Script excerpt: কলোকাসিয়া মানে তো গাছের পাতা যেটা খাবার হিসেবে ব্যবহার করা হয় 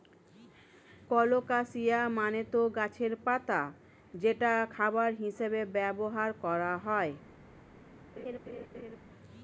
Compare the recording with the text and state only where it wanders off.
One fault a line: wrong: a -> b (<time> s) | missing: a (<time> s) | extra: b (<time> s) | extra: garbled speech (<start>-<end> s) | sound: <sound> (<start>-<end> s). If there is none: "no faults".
sound: laugh (8.2-9.0 s)